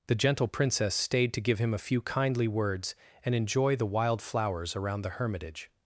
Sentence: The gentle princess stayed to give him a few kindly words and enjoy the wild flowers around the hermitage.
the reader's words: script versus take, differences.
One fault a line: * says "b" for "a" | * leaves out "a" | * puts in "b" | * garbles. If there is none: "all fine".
all fine